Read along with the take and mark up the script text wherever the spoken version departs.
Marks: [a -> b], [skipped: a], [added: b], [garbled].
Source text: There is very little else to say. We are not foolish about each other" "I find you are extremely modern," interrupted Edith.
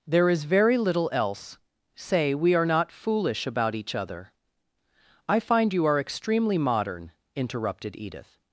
There is very little else [skipped: to] say. We are not foolish about each other" "I find you are extremely modern," interrupted Edith.